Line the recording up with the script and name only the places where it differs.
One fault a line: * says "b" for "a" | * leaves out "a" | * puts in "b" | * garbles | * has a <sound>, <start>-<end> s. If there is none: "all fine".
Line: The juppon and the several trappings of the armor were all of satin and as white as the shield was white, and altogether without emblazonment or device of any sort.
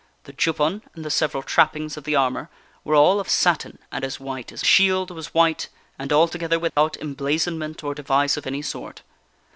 * has a dropout, 6.7-6.8 s